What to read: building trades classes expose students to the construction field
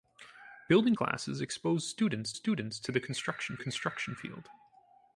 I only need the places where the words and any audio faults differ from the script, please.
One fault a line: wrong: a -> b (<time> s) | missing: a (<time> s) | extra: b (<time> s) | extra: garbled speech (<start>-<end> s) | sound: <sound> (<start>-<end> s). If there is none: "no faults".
missing: trades (0.9 s)
extra: students (2.3 s)
extra: construction (3.5 s)